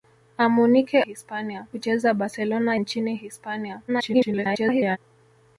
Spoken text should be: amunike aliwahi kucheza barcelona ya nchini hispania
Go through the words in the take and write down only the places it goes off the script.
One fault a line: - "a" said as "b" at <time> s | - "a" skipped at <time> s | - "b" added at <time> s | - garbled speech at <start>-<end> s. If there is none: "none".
- "aliwahi" said as "hispania" at 1.0 s
- "ya" skipped at 2.8 s
- garbled speech at 3.9-5.0 s